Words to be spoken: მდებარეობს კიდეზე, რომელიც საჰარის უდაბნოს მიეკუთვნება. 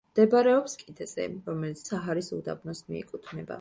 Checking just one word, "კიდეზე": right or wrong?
right